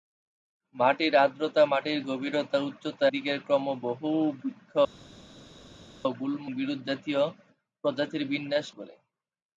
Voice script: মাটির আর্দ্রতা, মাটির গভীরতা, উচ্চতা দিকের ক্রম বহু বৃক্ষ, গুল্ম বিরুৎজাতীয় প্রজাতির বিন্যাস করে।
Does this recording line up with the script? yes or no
yes